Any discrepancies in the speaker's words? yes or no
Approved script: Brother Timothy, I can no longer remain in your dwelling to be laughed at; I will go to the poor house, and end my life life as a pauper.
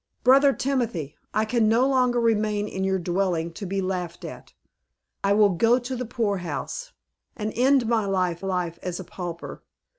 no